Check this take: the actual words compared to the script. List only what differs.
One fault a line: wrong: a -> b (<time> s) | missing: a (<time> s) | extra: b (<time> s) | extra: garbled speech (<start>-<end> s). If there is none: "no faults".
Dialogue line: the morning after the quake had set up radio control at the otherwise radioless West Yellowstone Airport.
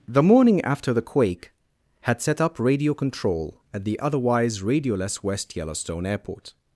no faults